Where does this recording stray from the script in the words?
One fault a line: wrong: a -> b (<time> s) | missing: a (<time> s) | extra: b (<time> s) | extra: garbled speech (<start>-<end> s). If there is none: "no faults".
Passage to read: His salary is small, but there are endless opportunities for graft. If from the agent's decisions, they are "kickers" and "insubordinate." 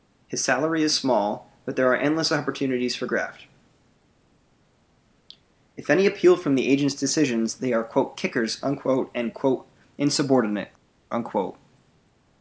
extra: any appeal (5.9 s)